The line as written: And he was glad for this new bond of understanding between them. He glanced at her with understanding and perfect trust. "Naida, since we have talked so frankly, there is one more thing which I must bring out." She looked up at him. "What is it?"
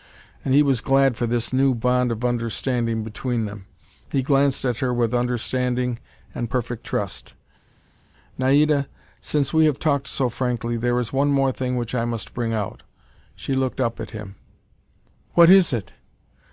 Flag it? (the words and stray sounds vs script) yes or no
no